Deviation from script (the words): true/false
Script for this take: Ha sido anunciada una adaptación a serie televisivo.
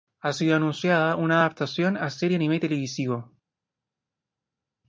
true